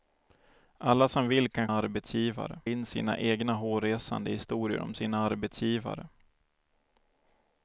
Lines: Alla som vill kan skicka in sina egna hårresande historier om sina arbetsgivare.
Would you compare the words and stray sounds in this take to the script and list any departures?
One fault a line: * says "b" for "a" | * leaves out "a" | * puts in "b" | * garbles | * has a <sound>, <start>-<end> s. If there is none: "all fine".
* says "arbetsgivare" for "skicka"